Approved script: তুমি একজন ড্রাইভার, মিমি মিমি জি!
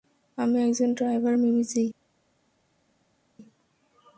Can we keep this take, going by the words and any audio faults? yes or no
no